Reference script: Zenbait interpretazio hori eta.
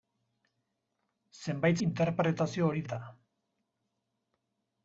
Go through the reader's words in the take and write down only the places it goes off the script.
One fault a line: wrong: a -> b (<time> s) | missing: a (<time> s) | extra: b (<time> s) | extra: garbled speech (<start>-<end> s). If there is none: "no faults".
no faults